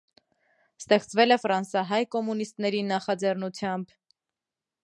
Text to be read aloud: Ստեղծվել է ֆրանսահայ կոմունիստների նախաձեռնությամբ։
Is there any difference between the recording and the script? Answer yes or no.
no